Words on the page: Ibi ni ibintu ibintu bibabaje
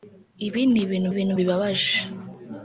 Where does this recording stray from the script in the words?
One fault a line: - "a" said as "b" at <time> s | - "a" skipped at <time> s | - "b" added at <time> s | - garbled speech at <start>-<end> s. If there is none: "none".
none